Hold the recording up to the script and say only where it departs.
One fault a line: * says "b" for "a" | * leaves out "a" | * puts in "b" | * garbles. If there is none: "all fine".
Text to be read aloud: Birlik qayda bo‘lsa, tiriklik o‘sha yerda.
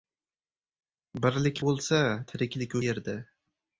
* leaves out "qayda"
* leaves out "o‘sha"